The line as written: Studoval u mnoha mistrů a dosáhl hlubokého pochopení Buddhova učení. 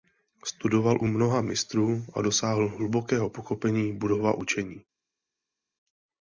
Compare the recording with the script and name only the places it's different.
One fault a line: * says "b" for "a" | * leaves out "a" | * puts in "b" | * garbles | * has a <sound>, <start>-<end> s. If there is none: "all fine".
all fine